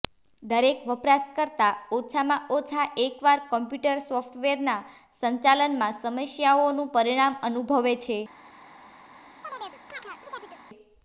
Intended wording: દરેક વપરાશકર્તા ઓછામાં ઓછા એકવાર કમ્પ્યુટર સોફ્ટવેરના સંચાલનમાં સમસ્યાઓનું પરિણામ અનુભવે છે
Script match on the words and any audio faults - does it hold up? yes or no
no